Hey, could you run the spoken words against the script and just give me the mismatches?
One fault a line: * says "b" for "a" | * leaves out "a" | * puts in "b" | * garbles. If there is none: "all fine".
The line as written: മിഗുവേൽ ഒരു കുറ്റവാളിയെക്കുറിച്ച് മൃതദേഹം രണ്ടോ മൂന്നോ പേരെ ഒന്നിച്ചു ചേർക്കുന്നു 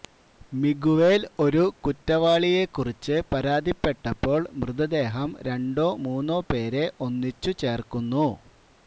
* puts in "പരാതിപ്പെട്ടപ്പോൾ"